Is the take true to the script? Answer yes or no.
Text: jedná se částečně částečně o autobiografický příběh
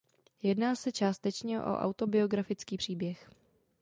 no